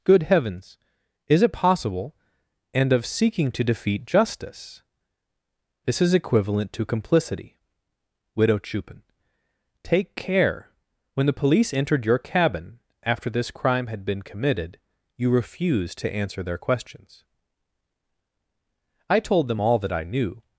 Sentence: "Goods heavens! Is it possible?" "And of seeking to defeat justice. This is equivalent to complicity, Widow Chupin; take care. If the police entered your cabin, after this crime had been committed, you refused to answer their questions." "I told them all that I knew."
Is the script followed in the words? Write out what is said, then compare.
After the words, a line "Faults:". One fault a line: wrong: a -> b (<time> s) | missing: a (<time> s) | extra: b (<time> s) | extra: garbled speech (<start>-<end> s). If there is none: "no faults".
"Good heavens! Is it possible?" "And of seeking to defeat justice. This is equivalent to complicity, Widow Chupin; take care. When the police entered your cabin, after this crime had been committed, you refused to answer their questions." "I told them all that I knew."
Faults:
wrong: Goods -> Good (0.0 s)
wrong: If -> When (11.1 s)